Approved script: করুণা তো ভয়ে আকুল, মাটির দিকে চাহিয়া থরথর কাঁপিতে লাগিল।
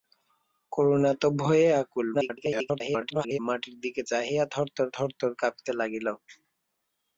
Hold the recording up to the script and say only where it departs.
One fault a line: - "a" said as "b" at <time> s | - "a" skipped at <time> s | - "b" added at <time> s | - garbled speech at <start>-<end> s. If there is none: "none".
- garbled speech at 2.1-3.4 s
- "থরথর" added at 5.0 s